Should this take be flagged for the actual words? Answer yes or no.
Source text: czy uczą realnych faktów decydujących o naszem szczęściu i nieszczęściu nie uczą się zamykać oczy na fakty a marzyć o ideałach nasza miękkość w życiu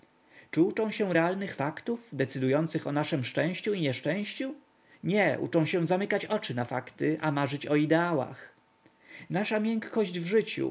yes